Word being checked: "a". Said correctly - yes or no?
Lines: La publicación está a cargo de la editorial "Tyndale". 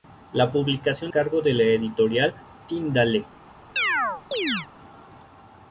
no